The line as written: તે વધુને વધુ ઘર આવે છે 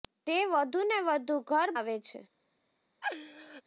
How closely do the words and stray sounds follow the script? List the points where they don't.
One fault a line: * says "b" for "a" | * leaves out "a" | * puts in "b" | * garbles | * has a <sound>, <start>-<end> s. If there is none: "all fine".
* has a laugh, 3.0-3.6 s